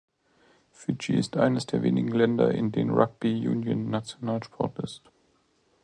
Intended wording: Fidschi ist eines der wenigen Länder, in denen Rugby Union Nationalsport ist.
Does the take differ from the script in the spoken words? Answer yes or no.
no